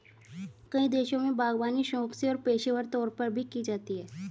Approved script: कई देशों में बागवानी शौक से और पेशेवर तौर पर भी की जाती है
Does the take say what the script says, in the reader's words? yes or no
yes